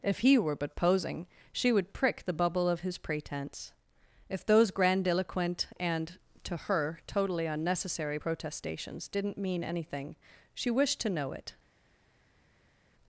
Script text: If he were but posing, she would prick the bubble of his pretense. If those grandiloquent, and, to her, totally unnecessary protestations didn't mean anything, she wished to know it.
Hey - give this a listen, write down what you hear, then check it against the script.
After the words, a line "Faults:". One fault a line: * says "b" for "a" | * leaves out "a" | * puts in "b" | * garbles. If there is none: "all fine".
If he were but posing, she would prick the bubble of his pretense. If those grandiloquent, and, to her, totally unnecessary protestations didn't mean anything, she wished to know it.
Faults:
all fine